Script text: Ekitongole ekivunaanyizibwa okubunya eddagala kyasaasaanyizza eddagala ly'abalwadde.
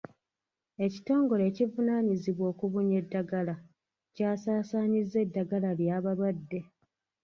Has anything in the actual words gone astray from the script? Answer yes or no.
no